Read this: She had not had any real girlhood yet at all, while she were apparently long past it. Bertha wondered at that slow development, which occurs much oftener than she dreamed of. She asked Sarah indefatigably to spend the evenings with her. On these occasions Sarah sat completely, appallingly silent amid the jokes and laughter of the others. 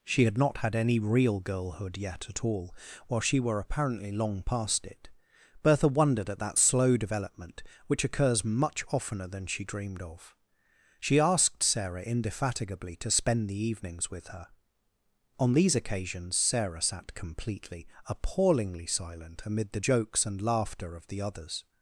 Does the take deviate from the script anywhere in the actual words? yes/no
no